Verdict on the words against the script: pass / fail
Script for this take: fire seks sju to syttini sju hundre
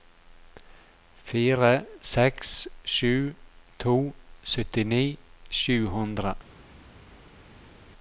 pass